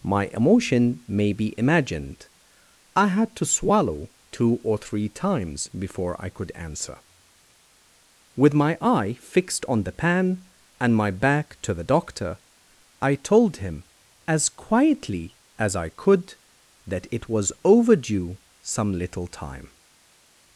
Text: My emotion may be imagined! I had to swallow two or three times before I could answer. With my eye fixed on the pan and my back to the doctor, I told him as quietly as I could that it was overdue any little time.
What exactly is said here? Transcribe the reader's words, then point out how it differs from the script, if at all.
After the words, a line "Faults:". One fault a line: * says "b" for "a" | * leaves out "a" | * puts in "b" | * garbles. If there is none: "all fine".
My emotion may be imagined! I had to swallow two or three times before I could answer. With my eye fixed on the pan and my back to the doctor, I told him as quietly as I could that it was overdue some little time.
Faults:
* says "some" for "any"